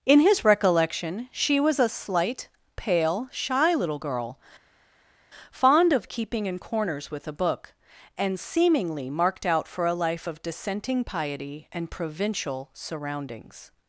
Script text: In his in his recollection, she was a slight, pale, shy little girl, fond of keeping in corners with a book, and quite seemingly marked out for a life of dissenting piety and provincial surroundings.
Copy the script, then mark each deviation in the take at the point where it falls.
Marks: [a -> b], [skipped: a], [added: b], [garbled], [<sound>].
In his [skipped: in his] recollection, she was a slight, pale, shy little girl, fond of keeping in corners with a book, and [skipped: quite] seemingly marked out for a life of dissenting piety and provincial surroundings.